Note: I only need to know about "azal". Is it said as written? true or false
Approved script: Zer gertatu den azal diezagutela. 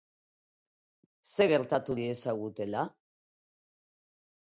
false